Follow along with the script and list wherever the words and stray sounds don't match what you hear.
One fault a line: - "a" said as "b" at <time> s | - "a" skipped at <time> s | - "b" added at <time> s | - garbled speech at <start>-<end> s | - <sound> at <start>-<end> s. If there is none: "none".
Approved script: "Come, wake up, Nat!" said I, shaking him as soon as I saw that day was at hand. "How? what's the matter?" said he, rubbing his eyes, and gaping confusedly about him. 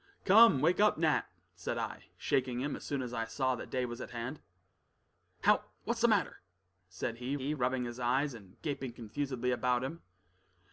- "he" added at 7.4 s